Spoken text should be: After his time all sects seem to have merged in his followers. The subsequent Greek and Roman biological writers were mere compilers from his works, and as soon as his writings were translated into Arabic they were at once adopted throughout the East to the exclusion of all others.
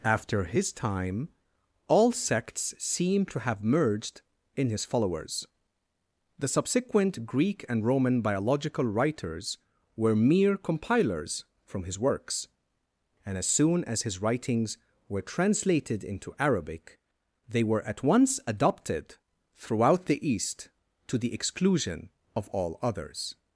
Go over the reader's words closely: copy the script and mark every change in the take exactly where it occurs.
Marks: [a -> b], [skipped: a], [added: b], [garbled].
After his time all sects seem to have merged in his followers. The subsequent Greek and Roman biological writers were mere compilers from his works, and as soon as his writings were translated into Arabic they were at once adopted throughout the East to the exclusion of all others.